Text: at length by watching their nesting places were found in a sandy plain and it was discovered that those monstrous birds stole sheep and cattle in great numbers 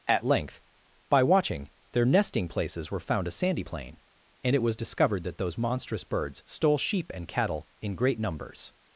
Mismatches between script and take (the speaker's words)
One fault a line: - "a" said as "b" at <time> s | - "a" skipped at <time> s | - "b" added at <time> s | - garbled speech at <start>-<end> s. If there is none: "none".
- "in" skipped at 3.3 s